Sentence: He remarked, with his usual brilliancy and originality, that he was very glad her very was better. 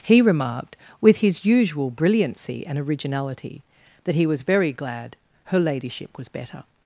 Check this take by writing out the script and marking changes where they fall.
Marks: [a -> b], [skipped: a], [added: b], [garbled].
He remarked, with his usual brilliancy and originality, that he was very glad her [very -> ladyship] was better.